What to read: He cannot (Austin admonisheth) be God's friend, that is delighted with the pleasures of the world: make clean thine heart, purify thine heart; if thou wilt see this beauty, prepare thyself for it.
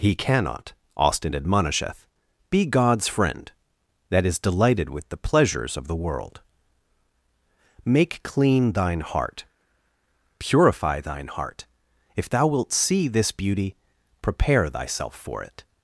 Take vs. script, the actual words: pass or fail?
pass